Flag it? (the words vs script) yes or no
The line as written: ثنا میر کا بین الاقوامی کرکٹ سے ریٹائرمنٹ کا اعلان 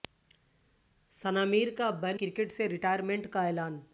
yes